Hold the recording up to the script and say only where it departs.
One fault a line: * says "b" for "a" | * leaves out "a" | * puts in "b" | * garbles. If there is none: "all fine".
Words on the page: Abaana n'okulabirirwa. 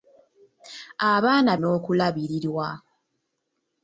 all fine